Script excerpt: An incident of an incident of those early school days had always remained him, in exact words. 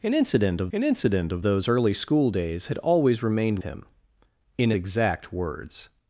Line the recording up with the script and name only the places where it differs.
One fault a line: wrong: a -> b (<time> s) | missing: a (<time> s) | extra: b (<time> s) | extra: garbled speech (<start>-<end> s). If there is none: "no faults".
no faults